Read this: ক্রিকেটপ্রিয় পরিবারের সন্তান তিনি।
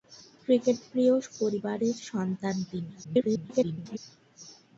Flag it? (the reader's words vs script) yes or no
yes